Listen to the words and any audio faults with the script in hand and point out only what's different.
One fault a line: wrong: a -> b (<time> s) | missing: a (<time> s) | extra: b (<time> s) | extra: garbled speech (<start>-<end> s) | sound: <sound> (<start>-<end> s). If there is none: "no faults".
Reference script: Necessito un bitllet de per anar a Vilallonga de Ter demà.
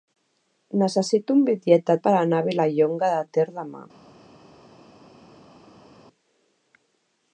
no faults